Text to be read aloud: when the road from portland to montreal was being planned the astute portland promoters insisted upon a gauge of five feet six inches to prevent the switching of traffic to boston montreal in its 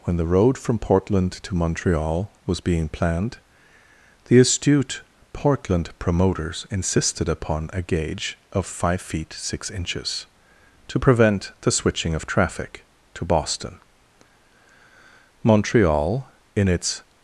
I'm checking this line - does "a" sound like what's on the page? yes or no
yes